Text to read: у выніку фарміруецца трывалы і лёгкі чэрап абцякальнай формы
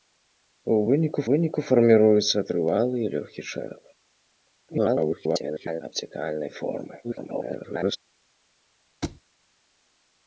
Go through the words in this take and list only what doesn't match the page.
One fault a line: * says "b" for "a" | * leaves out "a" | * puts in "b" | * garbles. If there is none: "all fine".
* puts in "выніку"
* garbles
* garbles